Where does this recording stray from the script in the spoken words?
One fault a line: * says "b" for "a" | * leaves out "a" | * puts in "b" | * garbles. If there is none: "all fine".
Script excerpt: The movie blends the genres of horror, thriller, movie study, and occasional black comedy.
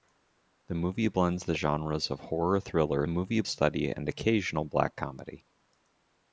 all fine